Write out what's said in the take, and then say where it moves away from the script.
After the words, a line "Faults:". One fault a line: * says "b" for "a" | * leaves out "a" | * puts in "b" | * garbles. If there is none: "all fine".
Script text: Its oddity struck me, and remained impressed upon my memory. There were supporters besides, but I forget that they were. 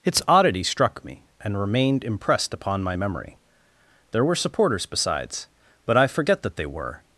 Its oddity struck me, and remained impressed upon my memory. There were supporters besides, but I forget that they were.
Faults:
all fine